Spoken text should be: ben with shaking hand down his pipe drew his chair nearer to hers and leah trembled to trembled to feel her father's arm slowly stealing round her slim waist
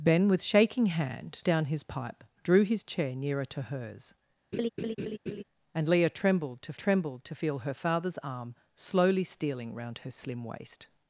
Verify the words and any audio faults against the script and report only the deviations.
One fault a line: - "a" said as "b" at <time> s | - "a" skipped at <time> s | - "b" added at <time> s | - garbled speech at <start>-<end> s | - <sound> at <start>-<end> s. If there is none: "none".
- laugh at 4.5-5.4 s